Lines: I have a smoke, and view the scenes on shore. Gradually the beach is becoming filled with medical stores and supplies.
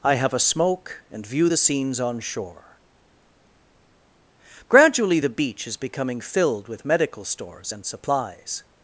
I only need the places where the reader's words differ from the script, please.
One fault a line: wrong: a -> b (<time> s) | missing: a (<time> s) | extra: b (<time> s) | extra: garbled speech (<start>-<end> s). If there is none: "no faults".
no faults